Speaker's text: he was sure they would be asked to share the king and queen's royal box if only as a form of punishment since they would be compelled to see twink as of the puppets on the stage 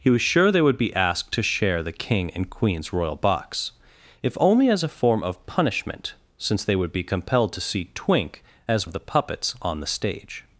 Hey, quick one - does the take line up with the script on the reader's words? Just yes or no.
yes